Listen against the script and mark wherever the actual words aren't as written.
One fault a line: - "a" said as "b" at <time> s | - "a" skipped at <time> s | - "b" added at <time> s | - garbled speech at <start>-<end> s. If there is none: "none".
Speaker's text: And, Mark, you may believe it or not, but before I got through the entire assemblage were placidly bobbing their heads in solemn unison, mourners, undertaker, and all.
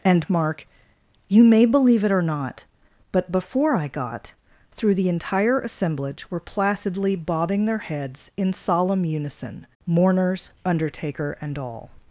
none